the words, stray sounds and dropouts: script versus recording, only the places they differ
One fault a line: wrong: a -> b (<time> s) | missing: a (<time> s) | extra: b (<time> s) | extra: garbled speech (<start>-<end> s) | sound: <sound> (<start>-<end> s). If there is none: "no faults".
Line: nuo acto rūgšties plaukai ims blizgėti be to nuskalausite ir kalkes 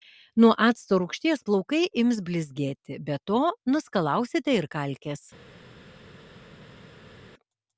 no faults